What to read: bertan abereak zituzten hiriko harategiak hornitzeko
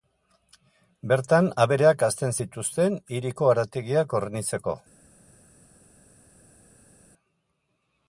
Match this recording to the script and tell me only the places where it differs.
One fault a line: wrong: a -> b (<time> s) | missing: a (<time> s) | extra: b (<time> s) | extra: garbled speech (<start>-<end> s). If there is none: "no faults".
extra: hazten (2.1 s)